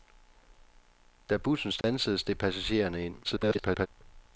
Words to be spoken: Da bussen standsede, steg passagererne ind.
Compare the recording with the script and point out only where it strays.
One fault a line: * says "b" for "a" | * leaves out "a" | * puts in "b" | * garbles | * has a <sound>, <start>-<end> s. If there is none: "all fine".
* has a dropout, 1.8-1.8 s
* garbles